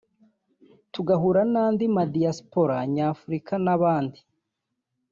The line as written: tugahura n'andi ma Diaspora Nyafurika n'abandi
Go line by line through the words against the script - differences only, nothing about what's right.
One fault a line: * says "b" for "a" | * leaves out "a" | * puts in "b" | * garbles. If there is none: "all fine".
all fine